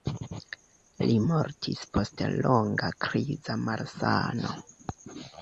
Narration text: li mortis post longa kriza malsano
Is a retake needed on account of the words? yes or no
no